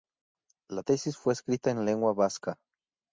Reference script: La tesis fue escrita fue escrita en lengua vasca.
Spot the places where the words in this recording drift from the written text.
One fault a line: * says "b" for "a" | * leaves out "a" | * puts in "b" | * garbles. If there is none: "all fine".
* leaves out "fue escrita"